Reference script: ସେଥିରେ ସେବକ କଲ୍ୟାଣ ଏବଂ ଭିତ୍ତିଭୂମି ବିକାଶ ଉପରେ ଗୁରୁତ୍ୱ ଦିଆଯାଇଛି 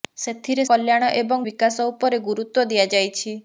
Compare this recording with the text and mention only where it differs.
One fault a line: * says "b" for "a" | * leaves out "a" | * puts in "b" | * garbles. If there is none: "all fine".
* leaves out "ସେବକ"
* leaves out "ଭିତ୍ତିଭୂମି"